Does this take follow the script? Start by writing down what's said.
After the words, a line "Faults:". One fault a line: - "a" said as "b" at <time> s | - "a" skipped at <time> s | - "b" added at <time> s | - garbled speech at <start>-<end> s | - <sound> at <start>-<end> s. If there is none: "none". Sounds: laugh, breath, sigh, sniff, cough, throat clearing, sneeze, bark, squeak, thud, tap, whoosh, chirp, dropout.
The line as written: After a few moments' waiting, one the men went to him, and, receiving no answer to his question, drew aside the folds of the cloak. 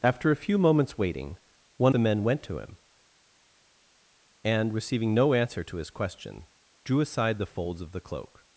After a few moments' waiting, one the men went to him, and, receiving no answer to his question, drew aside the folds of the cloak.
Faults:
none